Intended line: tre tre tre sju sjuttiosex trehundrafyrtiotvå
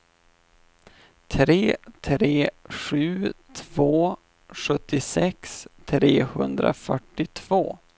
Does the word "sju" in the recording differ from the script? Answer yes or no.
yes